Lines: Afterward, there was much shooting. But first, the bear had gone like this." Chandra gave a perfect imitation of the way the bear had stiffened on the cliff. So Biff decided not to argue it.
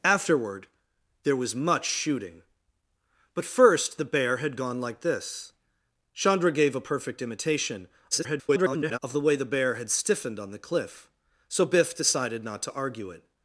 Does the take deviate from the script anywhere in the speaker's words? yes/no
yes